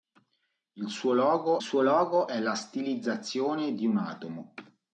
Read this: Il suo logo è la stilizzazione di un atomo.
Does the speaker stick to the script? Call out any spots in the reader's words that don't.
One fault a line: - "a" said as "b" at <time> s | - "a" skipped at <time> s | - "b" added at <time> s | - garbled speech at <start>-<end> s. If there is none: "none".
- "suo logo" added at 1.6 s